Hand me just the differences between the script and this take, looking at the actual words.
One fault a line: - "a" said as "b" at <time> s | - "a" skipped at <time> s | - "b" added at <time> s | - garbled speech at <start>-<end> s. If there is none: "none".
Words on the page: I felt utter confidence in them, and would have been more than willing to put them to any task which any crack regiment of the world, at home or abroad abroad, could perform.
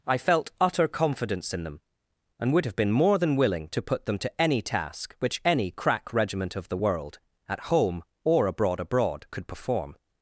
none